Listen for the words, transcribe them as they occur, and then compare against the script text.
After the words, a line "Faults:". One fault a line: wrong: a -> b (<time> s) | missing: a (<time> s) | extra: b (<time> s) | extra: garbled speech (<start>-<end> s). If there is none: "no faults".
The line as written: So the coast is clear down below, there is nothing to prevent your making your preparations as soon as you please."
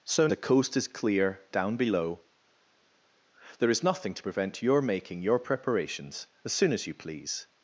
So the coast is clear down below, there is nothing to prevent your making your preparations as soon as you please."
Faults:
no faults